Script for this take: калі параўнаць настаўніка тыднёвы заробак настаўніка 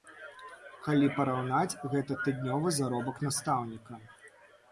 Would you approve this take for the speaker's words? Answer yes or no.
no